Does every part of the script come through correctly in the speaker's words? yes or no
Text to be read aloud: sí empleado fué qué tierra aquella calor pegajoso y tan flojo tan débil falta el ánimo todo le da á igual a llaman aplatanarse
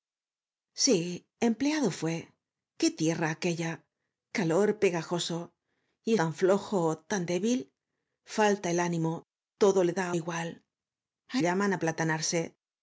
yes